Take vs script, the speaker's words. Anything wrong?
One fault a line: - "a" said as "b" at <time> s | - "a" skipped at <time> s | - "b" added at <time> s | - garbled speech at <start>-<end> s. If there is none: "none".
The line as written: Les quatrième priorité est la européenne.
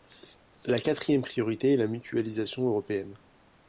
- "Les" said as "La" at 0.7 s
- "mutualisation" added at 1.9 s